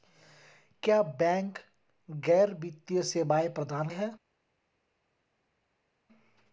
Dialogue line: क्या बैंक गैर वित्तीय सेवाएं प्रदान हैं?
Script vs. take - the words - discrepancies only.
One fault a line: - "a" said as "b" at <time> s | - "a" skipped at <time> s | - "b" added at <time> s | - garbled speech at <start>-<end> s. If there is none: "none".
none